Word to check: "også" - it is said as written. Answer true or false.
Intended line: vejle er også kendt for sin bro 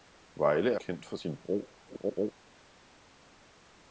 false